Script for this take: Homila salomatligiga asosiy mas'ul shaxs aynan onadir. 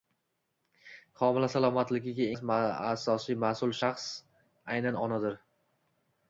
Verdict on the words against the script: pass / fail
pass